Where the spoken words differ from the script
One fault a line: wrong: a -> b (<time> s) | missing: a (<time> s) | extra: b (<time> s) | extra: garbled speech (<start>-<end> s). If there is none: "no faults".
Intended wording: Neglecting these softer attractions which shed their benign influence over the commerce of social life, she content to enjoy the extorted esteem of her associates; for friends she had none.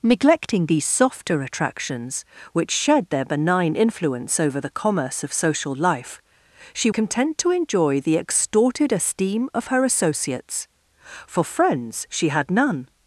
no faults